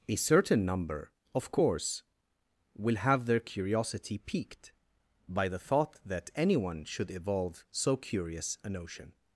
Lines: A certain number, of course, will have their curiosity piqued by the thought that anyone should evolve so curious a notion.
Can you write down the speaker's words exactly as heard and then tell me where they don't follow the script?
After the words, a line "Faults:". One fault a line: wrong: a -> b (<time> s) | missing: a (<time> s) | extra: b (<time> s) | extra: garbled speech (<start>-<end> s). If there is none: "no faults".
A certain number, of course, will have their curiosity piqued by the thought that anyone should evolve so curious a notion.
Faults:
no faults